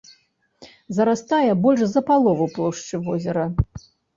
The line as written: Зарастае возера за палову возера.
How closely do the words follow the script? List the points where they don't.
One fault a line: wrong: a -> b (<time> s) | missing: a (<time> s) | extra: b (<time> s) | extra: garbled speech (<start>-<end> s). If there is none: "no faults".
wrong: возера -> больш (1.6 s)
extra: плошчы (2.6 s)